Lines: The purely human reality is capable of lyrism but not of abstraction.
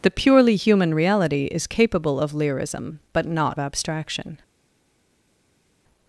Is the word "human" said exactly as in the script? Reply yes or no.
yes